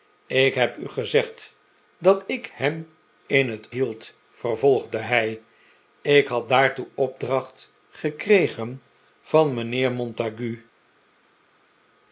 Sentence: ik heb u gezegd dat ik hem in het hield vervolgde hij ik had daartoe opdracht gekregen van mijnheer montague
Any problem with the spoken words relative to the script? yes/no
no